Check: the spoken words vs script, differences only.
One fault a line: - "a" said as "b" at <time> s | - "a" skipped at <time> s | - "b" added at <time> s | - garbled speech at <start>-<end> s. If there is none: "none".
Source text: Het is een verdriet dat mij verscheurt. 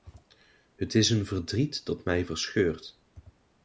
none